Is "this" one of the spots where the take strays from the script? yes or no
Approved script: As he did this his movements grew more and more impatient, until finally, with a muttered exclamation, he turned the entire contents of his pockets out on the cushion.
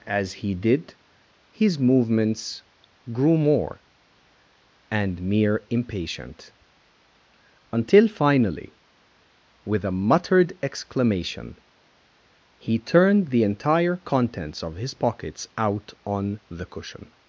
yes